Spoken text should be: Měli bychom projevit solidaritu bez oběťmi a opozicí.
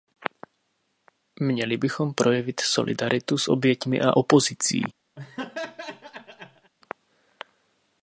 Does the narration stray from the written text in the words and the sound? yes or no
yes